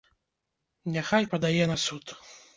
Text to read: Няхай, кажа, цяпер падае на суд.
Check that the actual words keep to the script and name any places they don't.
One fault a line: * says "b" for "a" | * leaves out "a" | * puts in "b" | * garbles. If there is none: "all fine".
* leaves out "кажа цяпер"